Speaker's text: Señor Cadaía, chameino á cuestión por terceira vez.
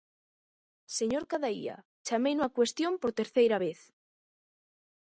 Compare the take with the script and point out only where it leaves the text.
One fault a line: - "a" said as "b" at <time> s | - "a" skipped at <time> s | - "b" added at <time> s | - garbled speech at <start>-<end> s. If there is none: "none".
none